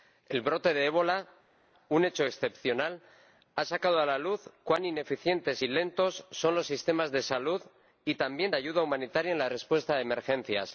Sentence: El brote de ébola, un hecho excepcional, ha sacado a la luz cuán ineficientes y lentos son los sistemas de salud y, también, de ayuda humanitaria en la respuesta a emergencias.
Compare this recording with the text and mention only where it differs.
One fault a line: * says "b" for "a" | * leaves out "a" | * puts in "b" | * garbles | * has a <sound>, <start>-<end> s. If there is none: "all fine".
all fine